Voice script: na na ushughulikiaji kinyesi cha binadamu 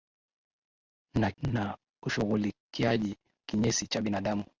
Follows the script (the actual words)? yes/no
yes